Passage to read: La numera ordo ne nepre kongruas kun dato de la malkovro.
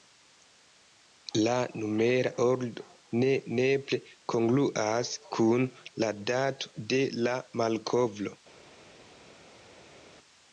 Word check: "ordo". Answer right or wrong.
right